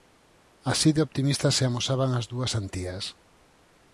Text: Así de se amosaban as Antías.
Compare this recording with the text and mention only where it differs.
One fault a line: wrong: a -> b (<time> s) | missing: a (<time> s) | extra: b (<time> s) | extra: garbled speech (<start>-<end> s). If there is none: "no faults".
extra: optimistas (1.0 s)
extra: dúas (2.3 s)